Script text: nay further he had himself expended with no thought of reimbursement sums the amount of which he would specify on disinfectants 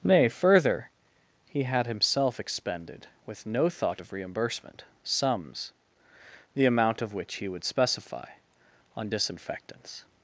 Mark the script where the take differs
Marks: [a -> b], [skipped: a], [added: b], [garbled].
nay further he had himself expended with no thought of reimbursement sums the amount of which he would specify on disinfectants